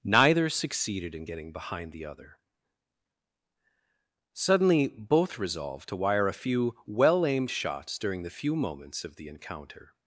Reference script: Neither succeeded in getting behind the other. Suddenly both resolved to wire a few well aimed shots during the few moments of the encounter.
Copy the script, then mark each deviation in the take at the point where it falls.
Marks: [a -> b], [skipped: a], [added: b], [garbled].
Neither succeeded in getting behind the other. Suddenly both resolved to wire a few well aimed shots during the few moments of the encounter.